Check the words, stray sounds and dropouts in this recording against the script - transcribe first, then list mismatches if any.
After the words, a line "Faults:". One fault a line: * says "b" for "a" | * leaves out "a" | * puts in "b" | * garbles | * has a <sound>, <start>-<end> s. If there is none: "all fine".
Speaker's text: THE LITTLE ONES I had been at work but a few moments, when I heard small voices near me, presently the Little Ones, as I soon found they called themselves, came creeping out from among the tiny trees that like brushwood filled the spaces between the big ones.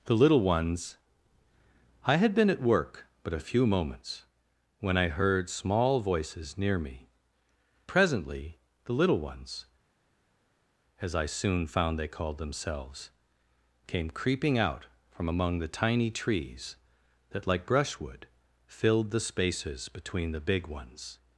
THE LITTLE ONES I had been at work but a few moments, when I heard small voices near me, presently the Little Ones, as I soon found they called themselves, came creeping out from among the tiny trees that like brushwood filled the spaces between the big ones.
Faults:
all fine